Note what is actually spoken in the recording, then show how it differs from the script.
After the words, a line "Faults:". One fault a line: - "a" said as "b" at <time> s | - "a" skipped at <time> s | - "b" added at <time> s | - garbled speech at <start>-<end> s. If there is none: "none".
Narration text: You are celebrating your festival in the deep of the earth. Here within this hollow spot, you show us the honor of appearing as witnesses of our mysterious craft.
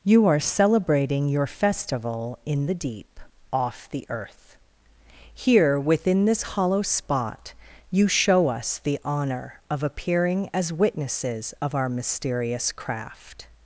You are celebrating your festival in the deep off the earth. Here within this hollow spot, you show us the honor of appearing as witnesses of our mysterious craft.
Faults:
- "of" said as "off" at 3.5 s